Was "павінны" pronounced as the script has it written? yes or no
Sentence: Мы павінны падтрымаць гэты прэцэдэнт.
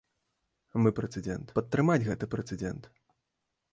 no